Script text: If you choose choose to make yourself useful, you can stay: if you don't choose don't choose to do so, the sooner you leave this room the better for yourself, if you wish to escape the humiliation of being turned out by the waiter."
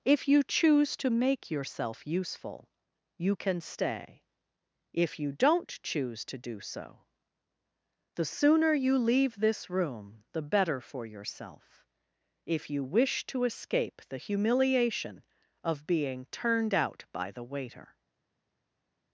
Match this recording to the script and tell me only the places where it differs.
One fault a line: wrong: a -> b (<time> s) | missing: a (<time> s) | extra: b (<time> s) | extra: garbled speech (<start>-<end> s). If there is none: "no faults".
missing: choose (1.0 s)
missing: don't choose (6.2 s)